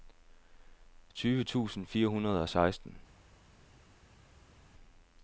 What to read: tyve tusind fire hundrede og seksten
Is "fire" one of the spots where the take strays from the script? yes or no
no